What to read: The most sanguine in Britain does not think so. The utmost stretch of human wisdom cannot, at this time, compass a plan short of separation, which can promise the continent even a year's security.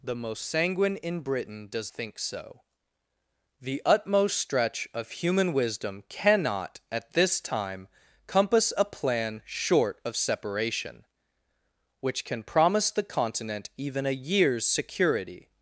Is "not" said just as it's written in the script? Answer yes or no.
no